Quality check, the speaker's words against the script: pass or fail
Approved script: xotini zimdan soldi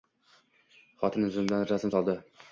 fail